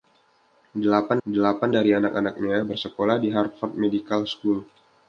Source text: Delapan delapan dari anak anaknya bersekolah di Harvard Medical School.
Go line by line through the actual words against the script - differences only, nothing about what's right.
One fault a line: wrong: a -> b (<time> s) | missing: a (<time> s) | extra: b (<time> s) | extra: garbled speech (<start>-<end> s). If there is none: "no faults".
no faults